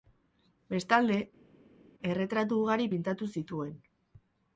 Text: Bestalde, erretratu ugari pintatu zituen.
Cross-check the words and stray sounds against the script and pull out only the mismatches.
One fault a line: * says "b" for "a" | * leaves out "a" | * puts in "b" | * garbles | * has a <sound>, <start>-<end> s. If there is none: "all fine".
all fine